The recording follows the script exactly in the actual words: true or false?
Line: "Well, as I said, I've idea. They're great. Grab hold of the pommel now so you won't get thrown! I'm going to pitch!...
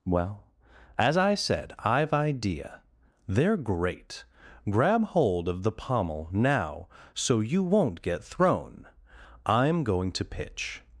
true